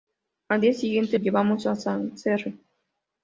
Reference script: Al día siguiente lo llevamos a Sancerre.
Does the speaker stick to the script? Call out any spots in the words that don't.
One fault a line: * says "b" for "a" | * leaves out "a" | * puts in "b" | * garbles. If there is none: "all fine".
* leaves out "lo"